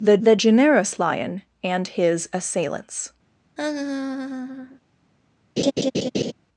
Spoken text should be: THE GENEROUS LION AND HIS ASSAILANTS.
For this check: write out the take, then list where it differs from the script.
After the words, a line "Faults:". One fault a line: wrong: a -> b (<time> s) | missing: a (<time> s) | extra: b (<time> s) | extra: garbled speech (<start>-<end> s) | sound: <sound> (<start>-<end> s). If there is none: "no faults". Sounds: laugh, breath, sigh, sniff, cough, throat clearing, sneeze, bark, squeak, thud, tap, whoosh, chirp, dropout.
THE the GENEROUS LION AND HIS ASSAILANTS.
Faults:
extra: the (0.2 s)
sound: laugh (3.6-4.8 s)
sound: laugh (5.6-6.3 s)